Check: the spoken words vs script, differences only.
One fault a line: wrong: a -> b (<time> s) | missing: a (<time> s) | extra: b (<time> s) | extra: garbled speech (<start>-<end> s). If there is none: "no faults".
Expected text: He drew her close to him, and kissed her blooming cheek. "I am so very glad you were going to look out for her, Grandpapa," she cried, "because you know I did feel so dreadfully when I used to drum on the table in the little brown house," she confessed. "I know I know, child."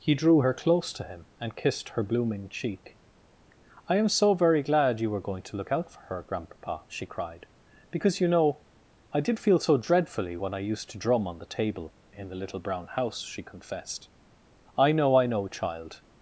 no faults